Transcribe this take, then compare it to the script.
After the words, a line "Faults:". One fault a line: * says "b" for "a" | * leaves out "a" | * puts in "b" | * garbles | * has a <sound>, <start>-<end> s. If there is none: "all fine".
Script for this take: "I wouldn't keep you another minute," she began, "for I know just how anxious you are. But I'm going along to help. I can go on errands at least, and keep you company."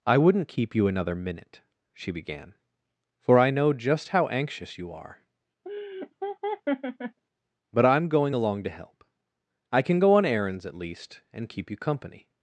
"I wouldn't keep you another minute," she began, "for I know just how anxious you are. But I'm going along to help. I can go on errands at least, and keep you company."
Faults:
* has a laugh, 5.6-7.2 s